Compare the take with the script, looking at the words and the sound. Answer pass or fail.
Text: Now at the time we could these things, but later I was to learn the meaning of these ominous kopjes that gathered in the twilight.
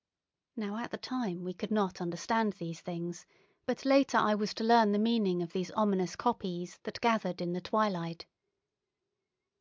fail